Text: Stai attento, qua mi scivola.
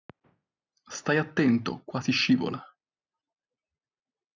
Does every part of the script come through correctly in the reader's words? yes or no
no